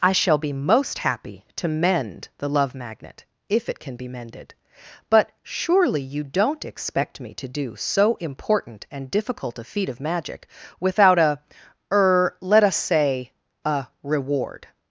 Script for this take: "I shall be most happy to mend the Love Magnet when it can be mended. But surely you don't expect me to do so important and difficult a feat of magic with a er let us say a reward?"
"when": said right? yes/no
no